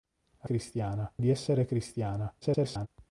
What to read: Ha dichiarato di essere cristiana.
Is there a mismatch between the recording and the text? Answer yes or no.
yes